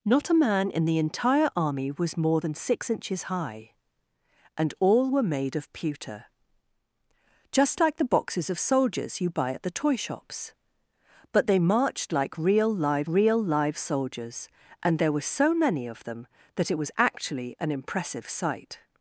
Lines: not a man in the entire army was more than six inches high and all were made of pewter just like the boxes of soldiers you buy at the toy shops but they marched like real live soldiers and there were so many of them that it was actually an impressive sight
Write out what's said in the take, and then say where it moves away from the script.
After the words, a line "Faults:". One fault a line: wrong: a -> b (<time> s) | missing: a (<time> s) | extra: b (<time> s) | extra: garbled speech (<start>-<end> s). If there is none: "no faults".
not a man in the entire army was more than six inches high and all were made of pewter just like the boxes of soldiers you buy at the toy shops but they marched like real live real live soldiers and there were so many of them that it was actually an impressive sight
Faults:
extra: real live (13.1 s)